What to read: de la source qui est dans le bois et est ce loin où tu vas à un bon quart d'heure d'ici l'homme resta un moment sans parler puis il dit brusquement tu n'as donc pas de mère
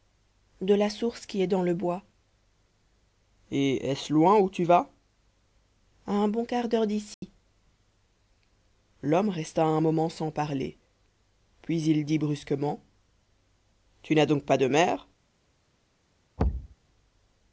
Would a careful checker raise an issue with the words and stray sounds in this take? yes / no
yes